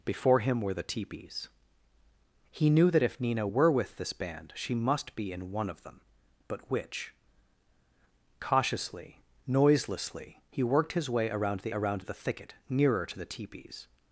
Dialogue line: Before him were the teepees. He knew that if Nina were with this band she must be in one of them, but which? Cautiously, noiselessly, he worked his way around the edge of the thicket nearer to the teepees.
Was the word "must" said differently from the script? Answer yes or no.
no